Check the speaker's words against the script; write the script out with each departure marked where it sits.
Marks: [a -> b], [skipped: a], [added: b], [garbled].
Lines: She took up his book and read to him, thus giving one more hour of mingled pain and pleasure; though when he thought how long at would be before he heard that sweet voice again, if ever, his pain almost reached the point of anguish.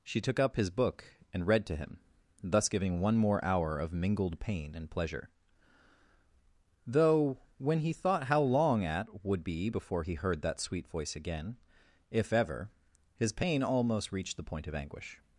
She took up his book and read to him, thus giving one more hour of mingled pain and pleasure; though when he thought how long at would be before he heard that sweet voice again, if ever, his pain almost reached the point of anguish.